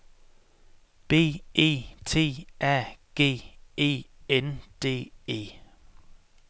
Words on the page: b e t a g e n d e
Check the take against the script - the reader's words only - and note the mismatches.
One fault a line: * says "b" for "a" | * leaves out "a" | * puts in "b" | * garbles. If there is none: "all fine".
all fine